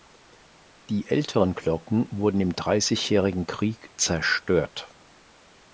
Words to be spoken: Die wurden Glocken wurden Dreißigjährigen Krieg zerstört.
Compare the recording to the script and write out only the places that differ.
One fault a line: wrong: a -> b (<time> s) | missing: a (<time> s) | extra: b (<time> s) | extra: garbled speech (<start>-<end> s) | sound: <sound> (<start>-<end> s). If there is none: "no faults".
wrong: wurden -> älteren (1.1 s)
extra: im (2.4 s)